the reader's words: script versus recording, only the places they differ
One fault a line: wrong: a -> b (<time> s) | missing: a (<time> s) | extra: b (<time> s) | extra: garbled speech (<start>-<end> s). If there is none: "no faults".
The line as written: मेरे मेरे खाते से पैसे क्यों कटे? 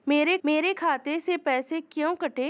no faults